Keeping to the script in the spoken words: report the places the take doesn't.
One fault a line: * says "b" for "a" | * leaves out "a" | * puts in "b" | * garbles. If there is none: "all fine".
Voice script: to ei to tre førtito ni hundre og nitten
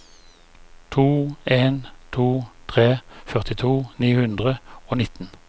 * says "en" for "ei"